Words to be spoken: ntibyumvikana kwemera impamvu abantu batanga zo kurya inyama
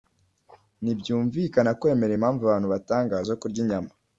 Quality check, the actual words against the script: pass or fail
pass